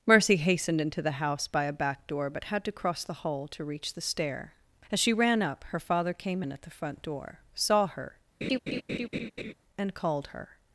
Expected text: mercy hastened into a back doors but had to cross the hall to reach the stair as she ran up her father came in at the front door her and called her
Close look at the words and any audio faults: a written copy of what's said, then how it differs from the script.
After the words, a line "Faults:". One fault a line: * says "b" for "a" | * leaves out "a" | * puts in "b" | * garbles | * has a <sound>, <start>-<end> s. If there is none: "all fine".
mercy hastened into the house by a back door but had to cross the hall to reach the stair as she ran up her father came in at the front door saw her and called her
Faults:
* puts in "the house by"
* says "door" for "doors"
* puts in "saw"
* has a laugh, 8.4-9.5 s